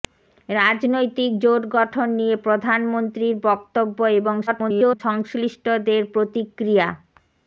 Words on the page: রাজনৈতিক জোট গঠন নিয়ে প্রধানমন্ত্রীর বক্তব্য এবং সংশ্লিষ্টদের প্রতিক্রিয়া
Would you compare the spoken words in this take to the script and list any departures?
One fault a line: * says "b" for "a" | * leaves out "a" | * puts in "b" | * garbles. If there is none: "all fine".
* garbles